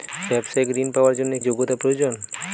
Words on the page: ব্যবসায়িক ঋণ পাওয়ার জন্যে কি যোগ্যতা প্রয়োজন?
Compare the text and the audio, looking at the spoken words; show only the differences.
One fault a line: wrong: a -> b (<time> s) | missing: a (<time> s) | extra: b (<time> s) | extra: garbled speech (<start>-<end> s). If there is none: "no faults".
missing: কি (1.4 s)